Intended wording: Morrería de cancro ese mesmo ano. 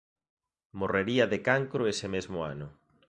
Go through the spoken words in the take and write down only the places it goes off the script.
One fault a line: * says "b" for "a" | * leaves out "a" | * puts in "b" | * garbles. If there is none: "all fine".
all fine